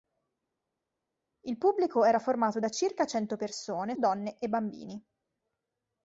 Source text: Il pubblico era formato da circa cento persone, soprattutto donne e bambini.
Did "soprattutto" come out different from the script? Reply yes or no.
yes